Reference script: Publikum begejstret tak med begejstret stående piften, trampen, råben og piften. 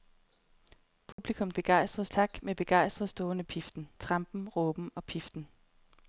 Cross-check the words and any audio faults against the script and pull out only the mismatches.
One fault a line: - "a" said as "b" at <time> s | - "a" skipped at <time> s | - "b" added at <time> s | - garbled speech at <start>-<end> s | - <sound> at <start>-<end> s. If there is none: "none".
- dropout at 1.1-1.2 s